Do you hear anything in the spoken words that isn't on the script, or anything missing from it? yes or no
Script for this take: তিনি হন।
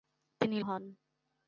no